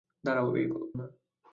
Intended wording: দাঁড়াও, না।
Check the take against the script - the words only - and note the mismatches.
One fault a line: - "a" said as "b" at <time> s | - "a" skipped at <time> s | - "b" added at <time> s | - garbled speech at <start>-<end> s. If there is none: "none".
none